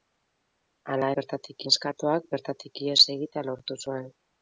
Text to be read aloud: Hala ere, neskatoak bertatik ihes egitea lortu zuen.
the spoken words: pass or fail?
fail